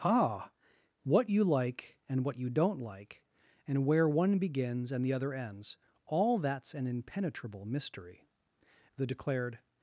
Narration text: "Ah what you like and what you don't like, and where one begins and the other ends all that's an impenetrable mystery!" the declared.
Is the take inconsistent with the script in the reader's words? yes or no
no